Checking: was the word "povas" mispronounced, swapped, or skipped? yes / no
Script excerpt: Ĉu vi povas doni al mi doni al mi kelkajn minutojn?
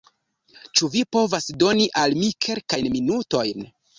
no